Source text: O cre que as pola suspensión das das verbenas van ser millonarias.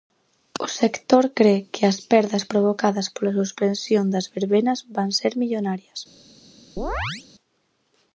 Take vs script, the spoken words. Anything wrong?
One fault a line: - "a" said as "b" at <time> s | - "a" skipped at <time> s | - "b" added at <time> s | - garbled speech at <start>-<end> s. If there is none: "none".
- "sector" added at 0.8 s
- "perdas provocadas" added at 2.1 s
- "das" skipped at 4.3 s